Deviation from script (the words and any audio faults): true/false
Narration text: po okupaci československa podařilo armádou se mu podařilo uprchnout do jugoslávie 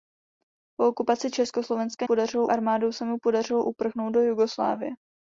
false